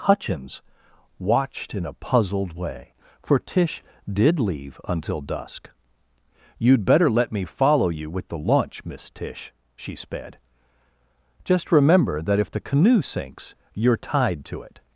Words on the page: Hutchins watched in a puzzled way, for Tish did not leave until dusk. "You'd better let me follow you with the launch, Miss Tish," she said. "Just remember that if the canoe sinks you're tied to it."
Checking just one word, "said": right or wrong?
wrong